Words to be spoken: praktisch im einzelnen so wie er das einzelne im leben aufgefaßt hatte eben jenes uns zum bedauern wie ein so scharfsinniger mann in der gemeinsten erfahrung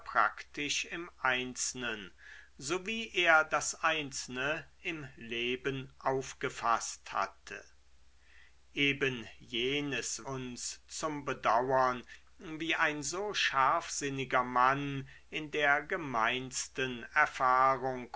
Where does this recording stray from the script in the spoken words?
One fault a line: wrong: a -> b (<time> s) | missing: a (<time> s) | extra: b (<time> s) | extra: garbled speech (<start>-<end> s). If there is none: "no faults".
no faults